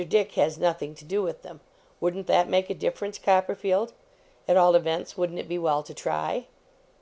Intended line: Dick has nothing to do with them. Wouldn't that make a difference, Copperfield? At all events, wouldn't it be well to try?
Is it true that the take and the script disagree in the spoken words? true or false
false